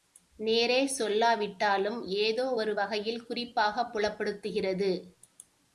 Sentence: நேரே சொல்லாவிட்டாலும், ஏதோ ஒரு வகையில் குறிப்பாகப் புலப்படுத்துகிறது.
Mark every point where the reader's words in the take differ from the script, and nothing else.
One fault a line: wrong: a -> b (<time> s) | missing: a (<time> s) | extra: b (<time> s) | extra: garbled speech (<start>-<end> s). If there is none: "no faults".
no faults